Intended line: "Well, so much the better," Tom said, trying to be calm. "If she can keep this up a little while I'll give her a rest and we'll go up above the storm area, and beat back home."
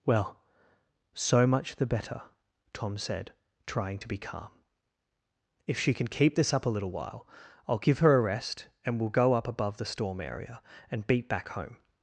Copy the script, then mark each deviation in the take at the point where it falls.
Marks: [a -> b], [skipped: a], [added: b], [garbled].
"Well, so much the better," Tom said, trying to be calm. "If she can keep this up a little while I'll give her a rest and we'll go up above the storm area, and beat back home."